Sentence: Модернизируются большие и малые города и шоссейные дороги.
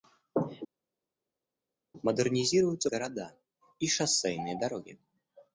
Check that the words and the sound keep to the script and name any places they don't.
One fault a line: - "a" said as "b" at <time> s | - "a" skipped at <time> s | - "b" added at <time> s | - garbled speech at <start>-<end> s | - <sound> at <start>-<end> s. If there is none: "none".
- "большие и малые" skipped at 2.9 s